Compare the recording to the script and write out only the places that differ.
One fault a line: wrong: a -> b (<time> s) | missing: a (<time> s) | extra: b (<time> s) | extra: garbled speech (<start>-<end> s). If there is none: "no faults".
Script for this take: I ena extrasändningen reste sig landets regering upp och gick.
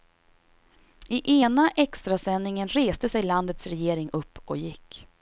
no faults